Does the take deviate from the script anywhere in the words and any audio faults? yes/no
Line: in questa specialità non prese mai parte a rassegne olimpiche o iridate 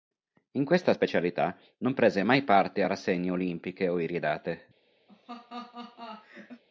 yes